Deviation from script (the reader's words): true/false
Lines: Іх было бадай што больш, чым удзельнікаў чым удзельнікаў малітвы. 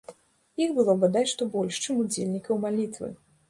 true